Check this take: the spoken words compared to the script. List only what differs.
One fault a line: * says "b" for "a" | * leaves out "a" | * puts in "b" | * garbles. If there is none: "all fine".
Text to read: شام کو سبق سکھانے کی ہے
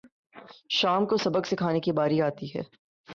* puts in "باری آتی"